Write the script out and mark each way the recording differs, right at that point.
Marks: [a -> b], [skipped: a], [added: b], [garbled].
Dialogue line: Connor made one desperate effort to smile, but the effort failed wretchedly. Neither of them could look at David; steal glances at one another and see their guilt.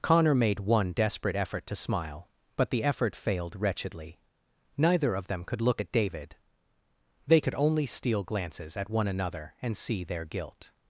Connor made one desperate effort to smile, but the effort failed wretchedly. Neither of them could look at David; [added: they could only] steal glances at one another and see their guilt.